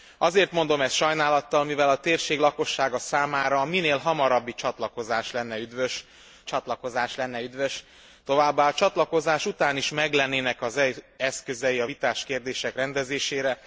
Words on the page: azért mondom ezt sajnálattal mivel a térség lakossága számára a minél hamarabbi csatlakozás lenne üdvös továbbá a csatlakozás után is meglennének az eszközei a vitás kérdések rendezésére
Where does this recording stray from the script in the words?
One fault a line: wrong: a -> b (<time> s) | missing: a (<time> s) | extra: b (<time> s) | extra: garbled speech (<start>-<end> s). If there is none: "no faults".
extra: csatlakozás lenne üdvös (6.4 s)